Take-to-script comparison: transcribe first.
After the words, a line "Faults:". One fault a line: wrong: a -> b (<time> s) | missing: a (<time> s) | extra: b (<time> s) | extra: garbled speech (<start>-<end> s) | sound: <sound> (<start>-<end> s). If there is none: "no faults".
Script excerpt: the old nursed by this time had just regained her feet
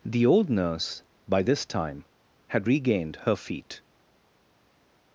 the old nurse by this time had regained her feet
Faults:
wrong: nursed -> nurse (0.5 s)
missing: just (2.7 s)